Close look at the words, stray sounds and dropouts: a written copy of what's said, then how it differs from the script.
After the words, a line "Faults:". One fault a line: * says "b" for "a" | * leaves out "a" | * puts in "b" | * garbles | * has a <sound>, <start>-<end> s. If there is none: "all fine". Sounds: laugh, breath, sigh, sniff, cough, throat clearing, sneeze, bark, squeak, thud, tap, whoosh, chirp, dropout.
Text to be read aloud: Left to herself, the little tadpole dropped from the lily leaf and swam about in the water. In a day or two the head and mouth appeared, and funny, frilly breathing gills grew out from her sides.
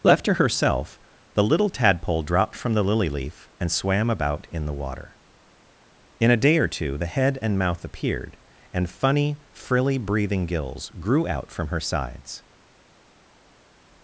Left to herself, the little tadpole dropped from the lily leaf and swam about in the water. In a day or two the head and mouth appeared, and funny, frilly breathing gills grew out from her sides.
Faults:
all fine